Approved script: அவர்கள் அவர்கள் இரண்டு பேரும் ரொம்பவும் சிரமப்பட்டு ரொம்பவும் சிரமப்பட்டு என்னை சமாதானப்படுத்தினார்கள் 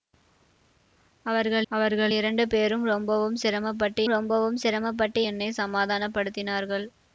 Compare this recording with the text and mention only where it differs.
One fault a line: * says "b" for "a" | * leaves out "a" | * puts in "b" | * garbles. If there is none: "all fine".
all fine